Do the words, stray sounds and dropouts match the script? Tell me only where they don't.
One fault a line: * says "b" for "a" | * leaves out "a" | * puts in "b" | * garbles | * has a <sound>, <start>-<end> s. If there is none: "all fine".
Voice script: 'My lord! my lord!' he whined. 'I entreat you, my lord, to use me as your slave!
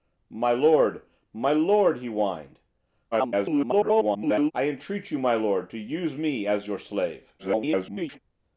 * garbles
* garbles